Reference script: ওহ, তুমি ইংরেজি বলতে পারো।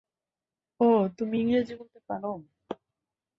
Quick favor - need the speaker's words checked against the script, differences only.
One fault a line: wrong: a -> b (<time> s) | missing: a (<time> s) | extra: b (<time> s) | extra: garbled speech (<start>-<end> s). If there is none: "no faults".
no faults